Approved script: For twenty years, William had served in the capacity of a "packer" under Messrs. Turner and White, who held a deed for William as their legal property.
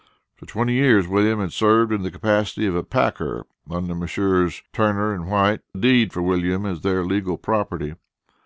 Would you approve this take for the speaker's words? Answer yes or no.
no